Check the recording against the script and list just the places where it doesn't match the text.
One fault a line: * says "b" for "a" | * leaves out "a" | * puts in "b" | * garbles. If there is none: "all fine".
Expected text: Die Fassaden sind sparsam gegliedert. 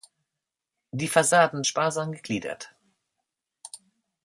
* leaves out "sind"